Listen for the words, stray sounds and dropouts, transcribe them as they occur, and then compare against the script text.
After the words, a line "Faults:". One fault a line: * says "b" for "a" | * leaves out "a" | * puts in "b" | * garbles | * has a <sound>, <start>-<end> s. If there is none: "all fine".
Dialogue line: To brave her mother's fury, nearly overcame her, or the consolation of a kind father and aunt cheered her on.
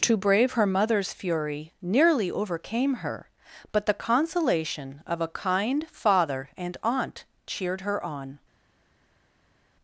To brave her mother's fury, nearly overcame her, but the consolation of a kind father and aunt cheered her on.
Faults:
* says "but" for "or"